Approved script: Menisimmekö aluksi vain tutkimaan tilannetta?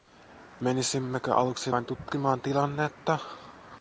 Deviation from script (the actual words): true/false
false